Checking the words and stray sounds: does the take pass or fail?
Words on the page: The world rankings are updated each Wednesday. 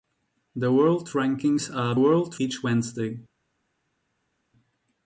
fail